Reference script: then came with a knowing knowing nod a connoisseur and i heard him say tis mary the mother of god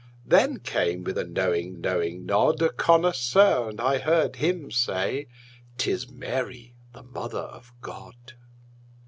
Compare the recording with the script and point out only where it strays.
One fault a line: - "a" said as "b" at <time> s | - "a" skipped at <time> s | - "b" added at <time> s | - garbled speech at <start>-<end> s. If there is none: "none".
none